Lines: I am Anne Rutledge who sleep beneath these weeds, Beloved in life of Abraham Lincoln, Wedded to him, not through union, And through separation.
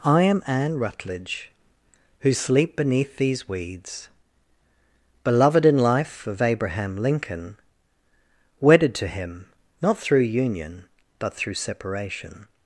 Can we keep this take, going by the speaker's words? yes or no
no